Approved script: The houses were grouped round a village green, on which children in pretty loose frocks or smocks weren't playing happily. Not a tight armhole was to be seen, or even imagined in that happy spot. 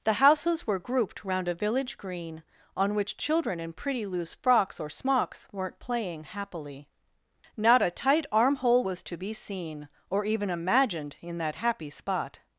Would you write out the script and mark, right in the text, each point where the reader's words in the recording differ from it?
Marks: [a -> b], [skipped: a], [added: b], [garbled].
The houses were grouped round a village green, on which children in pretty loose frocks or smocks weren't playing happily. Not a tight armhole was to be seen, or even imagined in that happy spot.